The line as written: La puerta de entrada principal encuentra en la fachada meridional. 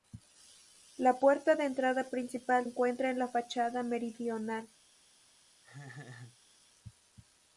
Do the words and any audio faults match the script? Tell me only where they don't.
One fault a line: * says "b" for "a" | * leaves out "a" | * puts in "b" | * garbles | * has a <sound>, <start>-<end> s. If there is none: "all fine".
* has a laugh, 5.6-6.4 s